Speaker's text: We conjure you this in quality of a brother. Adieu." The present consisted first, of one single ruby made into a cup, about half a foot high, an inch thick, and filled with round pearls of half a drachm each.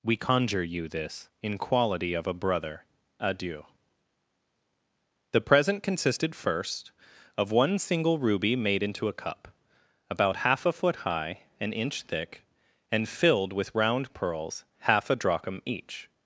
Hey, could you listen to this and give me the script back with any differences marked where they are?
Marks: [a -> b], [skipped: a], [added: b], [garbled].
We conjure you this in quality of a brother. Adieu." The present consisted first, of one single ruby made into a cup, about half a foot high, an inch thick, and filled with round pearls [skipped: of] half a drachm each.